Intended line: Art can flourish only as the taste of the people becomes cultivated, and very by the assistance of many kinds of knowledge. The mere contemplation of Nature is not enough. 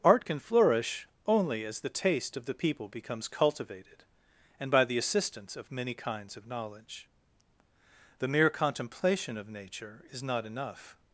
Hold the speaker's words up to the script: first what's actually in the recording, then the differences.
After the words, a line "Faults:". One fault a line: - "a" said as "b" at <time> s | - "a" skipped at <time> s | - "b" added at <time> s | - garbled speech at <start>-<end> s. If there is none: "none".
Art can flourish only as the taste of the people becomes cultivated, and by the assistance of many kinds of knowledge. The mere contemplation of Nature is not enough.
Faults:
- "very" skipped at 4.7 s